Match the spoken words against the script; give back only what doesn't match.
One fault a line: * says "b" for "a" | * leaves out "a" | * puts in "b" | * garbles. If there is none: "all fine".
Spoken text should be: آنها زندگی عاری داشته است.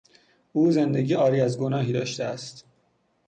* says "او" for "آنها"
* puts in "از گناهی"